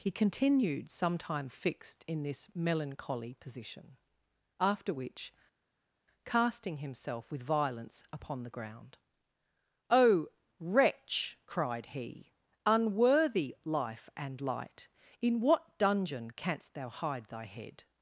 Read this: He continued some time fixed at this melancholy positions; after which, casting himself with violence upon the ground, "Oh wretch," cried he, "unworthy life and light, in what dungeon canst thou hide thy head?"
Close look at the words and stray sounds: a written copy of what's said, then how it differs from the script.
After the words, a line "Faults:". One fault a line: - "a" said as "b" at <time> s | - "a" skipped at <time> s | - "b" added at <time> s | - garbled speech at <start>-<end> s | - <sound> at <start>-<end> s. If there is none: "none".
He continued some time fixed in this melancholy position; after which, casting himself with violence upon the ground, "Oh wretch," cried he, "unworthy life and light, in what dungeon canst thou hide thy head?"
Faults:
- "at" said as "in" at 2.1 s
- "positions" said as "position" at 3.4 s